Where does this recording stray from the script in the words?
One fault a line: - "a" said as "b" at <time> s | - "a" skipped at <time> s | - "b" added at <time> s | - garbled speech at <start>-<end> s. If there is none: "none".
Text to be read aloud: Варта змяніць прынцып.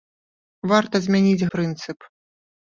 none